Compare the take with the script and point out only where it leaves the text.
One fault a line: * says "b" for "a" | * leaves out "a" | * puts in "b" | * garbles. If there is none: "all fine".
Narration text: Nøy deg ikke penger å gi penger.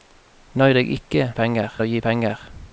all fine